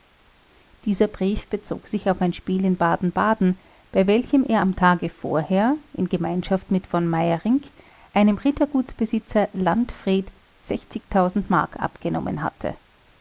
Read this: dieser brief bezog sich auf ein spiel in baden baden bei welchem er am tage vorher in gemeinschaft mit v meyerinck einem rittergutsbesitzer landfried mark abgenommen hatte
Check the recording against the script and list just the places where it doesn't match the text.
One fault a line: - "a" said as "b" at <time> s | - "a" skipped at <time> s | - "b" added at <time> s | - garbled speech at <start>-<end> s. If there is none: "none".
none